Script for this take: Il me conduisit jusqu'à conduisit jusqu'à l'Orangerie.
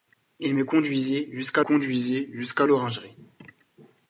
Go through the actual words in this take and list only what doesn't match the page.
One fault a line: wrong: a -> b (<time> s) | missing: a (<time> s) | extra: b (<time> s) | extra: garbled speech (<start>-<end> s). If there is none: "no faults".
no faults